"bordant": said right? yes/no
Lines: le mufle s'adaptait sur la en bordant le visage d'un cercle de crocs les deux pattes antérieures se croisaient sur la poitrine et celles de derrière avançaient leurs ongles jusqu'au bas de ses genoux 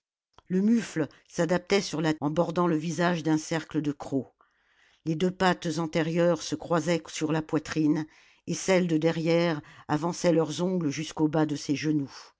yes